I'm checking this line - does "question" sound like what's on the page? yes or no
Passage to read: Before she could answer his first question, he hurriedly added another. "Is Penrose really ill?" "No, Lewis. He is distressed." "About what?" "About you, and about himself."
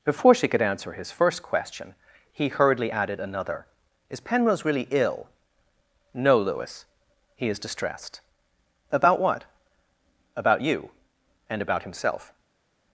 yes